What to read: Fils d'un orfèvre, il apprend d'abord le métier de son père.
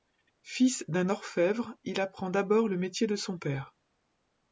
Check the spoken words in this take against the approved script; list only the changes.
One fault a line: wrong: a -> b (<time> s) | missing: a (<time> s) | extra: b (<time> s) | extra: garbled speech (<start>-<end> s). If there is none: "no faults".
no faults